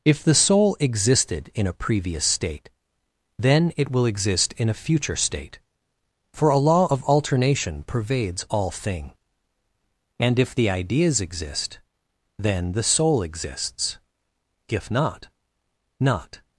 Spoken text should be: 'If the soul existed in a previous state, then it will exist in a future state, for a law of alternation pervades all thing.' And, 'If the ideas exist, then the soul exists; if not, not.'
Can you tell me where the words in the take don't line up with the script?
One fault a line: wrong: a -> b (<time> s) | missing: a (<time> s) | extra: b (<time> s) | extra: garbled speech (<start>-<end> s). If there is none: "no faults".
no faults